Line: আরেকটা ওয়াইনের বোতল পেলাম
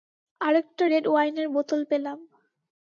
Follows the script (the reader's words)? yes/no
no